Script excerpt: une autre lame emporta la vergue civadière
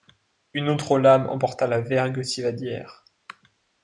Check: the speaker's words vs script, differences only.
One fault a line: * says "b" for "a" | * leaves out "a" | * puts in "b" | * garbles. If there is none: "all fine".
all fine